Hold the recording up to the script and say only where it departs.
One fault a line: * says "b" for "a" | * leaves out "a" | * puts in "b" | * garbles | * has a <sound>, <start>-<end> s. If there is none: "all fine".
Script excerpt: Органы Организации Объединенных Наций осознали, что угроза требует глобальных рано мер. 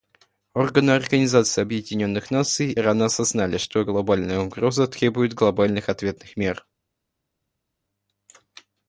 * puts in "рано"
* puts in "глобальная"
* says "ответных" for "рано"